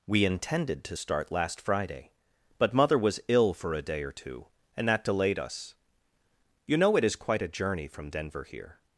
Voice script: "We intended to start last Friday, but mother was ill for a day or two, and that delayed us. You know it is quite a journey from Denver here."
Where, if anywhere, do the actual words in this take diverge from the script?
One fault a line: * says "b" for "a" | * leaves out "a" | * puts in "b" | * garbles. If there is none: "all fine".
all fine